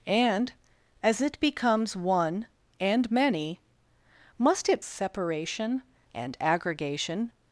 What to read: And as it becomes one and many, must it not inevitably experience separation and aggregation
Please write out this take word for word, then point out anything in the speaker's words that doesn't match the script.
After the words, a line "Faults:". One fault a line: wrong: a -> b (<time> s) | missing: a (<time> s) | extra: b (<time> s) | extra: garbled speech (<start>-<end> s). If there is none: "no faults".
And as it becomes one and many, must it separation and aggregation
Faults:
missing: not inevitably experience (4.8 s)